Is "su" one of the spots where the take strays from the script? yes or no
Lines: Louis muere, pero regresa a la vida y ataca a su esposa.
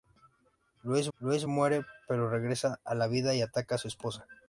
no